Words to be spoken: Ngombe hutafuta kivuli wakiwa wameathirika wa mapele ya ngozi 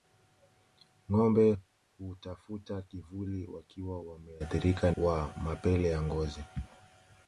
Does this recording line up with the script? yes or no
yes